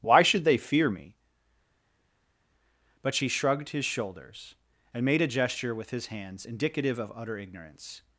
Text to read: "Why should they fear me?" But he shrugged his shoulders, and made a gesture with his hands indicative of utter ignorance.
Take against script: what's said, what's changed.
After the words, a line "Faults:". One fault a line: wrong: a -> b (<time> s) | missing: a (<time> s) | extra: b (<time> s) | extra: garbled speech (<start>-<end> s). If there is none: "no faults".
"Why should they fear me?" But she shrugged his shoulders, and made a gesture with his hands indicative of utter ignorance.
Faults:
wrong: he -> she (3.1 s)